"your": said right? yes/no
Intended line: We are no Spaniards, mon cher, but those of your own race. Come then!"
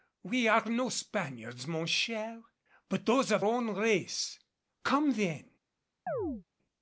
no